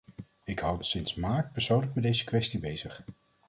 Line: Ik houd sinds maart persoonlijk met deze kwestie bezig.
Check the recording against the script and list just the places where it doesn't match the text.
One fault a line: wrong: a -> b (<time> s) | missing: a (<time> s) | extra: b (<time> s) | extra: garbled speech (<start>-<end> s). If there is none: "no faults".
no faults